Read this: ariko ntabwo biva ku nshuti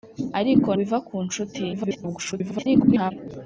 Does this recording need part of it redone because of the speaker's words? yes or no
yes